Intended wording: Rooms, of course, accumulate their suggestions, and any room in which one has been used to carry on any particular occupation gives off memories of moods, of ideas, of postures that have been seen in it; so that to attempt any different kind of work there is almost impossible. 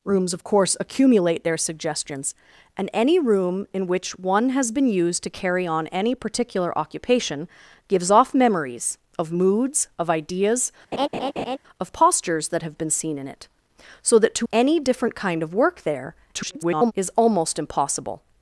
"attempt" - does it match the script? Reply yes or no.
no